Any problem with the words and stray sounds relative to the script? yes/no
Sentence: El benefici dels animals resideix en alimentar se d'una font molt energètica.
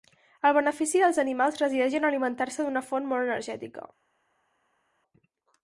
no